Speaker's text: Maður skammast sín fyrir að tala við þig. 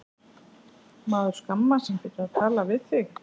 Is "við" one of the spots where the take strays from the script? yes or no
no